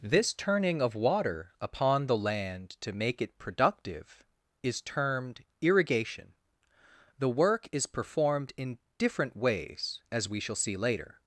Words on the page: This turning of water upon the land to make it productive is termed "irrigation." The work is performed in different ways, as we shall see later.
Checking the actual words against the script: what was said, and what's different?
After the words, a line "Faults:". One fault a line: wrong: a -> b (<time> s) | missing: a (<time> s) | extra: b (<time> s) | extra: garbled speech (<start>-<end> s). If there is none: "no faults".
This turning of water upon the land to make it productive is termed "irrigation." The work is performed in different ways, as we shall see later.
Faults:
no faults